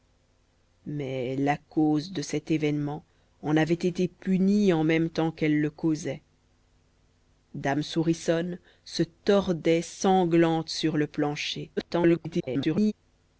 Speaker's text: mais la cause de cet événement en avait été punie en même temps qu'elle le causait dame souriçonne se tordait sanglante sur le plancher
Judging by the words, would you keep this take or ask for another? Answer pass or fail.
fail